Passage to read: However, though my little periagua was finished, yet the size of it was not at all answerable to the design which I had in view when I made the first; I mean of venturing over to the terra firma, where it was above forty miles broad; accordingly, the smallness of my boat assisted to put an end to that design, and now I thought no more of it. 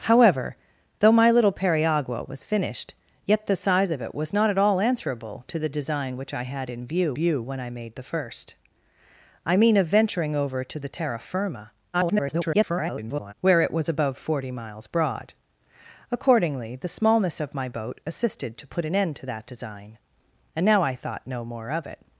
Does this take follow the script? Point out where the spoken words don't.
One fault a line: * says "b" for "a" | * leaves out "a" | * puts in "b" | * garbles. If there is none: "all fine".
* puts in "view"
* garbles